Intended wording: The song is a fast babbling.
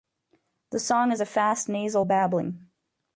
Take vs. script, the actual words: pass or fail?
fail